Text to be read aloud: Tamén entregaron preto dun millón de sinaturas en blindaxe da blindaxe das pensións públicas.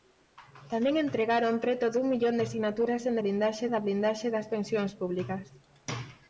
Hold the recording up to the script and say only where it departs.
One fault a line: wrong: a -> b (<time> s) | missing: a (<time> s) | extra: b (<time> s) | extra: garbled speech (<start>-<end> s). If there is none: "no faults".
no faults